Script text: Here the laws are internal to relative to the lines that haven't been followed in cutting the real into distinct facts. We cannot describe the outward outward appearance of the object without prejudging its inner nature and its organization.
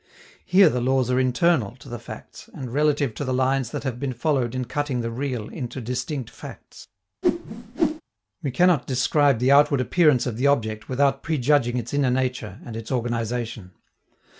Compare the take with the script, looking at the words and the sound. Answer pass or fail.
fail